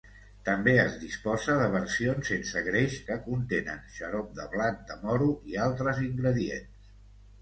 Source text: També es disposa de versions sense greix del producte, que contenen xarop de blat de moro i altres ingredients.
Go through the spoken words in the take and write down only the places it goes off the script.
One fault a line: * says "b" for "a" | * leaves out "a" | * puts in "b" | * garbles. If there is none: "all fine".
* leaves out "del producte"